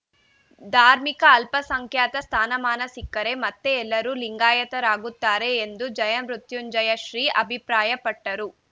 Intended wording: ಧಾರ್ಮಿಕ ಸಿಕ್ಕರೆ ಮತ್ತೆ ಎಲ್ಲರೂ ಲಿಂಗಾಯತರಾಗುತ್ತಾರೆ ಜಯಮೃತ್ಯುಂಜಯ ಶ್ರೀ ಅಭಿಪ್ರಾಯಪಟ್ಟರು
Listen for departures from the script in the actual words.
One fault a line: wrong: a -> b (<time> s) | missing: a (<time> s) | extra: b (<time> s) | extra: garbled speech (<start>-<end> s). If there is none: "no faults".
extra: ಅಲ್ಪಸಂಖ್ಯಾತ ಸ್ಥಾನಮಾನ (1.3 s)
extra: ಎಂದು (5.6 s)